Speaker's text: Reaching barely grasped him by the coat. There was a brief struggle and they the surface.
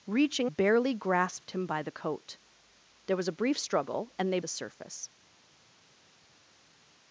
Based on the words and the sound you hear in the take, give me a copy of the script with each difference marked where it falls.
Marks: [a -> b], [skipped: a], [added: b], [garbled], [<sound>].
Reaching barely grasped him by the coat. There was a brief struggle and they the surface.